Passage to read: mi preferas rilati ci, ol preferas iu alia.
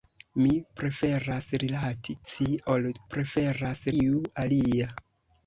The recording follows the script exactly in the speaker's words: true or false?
true